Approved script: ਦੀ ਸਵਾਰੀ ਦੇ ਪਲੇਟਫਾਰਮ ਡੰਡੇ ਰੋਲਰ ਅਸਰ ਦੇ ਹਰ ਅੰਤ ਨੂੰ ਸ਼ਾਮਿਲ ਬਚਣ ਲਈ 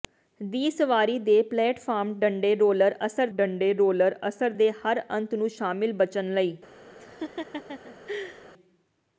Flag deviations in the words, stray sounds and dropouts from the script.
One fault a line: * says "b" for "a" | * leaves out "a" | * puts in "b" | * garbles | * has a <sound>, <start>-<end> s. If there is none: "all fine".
* puts in "ਡੰਡੇ ਰੋਲਰ ਅਸਰ"
* has a laugh, 7.0-8.5 s